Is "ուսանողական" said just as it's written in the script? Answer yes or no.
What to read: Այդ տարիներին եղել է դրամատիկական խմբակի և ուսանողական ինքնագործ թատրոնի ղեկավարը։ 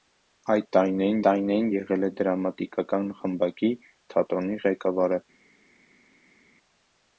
no